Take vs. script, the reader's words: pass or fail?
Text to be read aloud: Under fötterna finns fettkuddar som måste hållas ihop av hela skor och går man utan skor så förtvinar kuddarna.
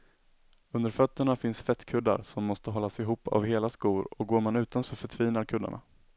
fail